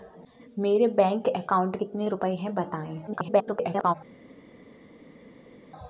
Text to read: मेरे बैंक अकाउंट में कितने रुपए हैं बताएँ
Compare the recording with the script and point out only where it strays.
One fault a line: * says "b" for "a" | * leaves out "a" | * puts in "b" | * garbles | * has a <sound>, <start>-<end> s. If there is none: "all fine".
* leaves out "में"
* garbles